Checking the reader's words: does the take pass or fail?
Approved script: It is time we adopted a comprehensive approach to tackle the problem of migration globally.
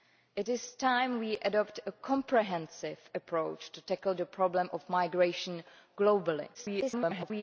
fail